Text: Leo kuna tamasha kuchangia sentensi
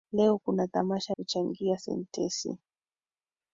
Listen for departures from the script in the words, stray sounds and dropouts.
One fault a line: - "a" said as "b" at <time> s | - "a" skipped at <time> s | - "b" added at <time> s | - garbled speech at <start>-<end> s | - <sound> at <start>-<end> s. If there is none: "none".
none